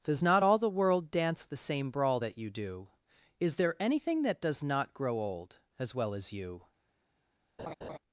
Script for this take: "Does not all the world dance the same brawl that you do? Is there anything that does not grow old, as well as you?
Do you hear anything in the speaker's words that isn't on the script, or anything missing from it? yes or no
no